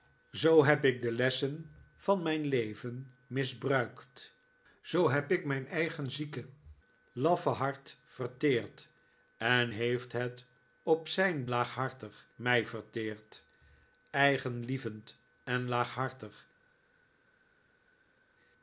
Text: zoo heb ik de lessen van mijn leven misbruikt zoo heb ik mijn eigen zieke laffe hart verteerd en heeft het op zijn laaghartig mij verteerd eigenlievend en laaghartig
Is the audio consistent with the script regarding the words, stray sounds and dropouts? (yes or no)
yes